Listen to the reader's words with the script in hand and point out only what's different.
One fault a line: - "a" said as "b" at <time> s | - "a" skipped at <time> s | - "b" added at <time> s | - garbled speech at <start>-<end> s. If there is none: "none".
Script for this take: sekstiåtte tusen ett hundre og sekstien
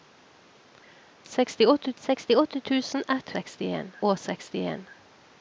- "sekstiåtte" added at 2.0 s
- "hundre" said as "sekstien" at 3.4 s